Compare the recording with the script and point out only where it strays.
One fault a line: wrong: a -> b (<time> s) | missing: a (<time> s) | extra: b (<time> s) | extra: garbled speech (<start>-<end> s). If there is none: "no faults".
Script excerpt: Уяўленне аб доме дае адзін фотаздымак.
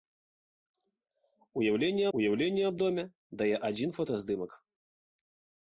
extra: уяўленне (2.2 s)